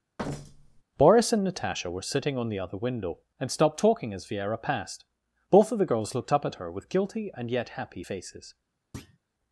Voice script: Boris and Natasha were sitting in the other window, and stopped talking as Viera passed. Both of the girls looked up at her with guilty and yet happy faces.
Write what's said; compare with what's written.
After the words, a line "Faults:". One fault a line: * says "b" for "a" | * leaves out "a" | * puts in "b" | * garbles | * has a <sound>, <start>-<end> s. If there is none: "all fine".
Boris and Natasha were sitting on the other window, and stopped talking as Viera passed. Both of the girls looked up at her with guilty and yet happy faces.
Faults:
* has a thud, 0.2-0.8 s
* says "on" for "in"
* has a thud, 8.9-9.2 s